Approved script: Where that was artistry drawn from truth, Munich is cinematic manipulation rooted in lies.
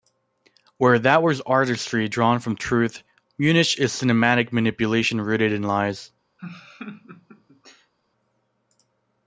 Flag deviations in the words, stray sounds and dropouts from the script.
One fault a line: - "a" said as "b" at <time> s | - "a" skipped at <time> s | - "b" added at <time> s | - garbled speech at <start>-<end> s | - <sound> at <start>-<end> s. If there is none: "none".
- laugh at 6.4-7.9 s